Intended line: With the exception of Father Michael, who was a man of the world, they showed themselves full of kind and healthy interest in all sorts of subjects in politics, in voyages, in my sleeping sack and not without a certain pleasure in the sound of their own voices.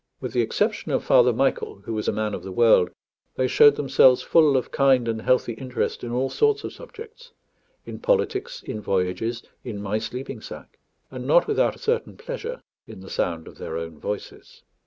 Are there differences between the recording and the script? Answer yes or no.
no